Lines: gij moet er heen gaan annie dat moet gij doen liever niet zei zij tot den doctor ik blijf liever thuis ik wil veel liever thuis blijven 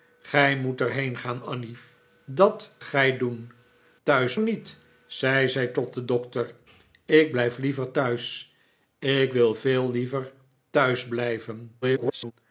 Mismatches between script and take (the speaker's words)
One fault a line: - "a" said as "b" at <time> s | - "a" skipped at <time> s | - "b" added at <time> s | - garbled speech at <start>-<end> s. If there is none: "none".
- "moet" skipped at 2.7 s
- "liever" said as "thuis" at 4.0 s
- garbled speech at 11.8-12.3 s